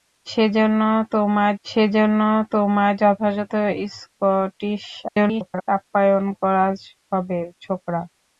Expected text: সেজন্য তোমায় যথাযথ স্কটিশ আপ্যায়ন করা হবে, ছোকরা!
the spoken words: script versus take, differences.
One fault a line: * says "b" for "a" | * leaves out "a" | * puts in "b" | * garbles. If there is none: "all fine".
* puts in "সেজন্য তোমায়"
* garbles